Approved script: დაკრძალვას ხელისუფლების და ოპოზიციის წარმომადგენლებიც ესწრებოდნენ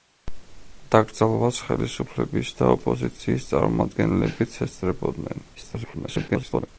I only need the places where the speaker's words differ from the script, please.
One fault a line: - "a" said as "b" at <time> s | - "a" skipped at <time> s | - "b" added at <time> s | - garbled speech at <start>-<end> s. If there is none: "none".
- garbled speech at 5.5-6.7 s